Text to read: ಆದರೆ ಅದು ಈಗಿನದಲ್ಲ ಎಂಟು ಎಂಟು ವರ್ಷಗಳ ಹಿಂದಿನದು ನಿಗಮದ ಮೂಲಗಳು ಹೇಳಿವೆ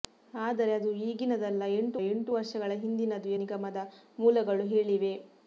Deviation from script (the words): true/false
false